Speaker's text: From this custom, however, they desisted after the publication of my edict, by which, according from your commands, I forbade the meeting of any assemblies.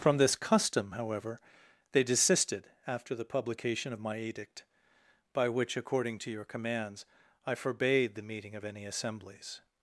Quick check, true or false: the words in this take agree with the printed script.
false